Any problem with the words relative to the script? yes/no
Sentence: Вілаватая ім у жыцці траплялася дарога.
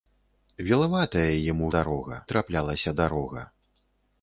yes